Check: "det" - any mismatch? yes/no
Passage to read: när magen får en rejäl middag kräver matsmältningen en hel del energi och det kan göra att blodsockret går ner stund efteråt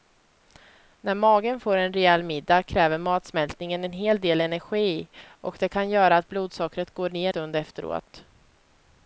no